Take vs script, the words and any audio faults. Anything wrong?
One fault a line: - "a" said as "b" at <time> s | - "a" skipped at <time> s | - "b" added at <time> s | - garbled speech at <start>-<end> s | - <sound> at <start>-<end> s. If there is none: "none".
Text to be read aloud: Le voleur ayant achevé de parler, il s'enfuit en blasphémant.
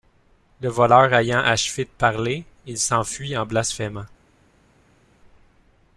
none